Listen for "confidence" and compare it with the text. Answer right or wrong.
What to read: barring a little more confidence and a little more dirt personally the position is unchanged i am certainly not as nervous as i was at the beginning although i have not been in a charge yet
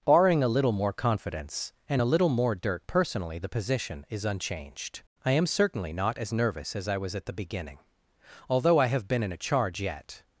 right